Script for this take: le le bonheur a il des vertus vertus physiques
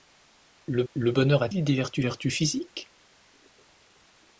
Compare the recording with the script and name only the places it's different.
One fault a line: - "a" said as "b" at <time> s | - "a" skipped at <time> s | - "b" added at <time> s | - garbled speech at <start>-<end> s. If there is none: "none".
none